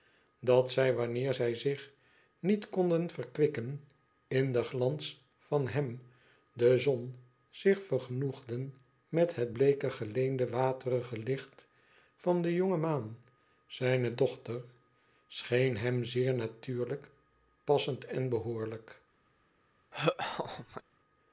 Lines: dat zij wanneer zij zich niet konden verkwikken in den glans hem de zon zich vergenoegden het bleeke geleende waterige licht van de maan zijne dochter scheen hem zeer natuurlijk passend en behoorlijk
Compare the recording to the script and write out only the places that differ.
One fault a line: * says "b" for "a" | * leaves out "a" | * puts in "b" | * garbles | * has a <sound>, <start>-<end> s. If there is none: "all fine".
* puts in "van"
* puts in "met"
* puts in "jonge"
* has a laugh, 19.9-20.8 s